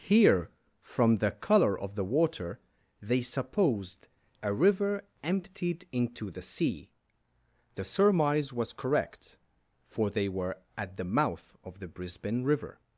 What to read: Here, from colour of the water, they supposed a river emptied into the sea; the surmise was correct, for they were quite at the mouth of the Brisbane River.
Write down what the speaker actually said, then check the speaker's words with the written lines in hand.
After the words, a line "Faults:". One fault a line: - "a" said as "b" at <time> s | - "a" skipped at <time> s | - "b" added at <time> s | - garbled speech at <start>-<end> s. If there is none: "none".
Here, from the colour of the water, they supposed a river emptied into the sea; the surmise was correct, for they were at the mouth of the Brisbane River.
Faults:
- "the" added at 1.2 s
- "quite" skipped at 10.6 s